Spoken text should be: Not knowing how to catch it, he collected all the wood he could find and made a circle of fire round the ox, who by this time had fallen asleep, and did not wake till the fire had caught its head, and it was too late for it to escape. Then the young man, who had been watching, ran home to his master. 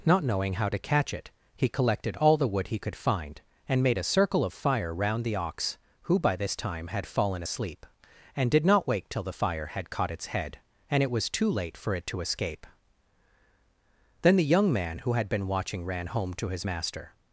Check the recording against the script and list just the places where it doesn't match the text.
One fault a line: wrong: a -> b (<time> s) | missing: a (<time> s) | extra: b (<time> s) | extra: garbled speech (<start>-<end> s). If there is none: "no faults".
no faults